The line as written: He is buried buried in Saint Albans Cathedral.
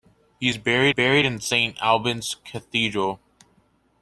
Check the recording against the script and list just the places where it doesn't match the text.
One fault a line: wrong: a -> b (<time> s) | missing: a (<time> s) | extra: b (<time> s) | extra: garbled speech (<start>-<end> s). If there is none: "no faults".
no faults